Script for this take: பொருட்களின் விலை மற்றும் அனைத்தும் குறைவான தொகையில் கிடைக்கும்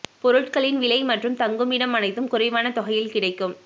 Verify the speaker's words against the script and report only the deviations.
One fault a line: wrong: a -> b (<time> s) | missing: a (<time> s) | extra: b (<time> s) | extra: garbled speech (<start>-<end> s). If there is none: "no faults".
extra: தங்குமிடம் (1.4 s)